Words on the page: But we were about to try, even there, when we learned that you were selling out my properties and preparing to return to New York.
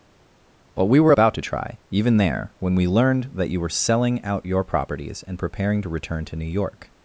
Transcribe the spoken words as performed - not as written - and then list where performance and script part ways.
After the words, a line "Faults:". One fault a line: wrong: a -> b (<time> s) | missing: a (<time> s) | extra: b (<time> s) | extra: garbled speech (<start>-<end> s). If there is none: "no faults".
But we were about to try, even there, when we learned that you were selling out your properties and preparing to return to New York.
Faults:
wrong: my -> your (4.4 s)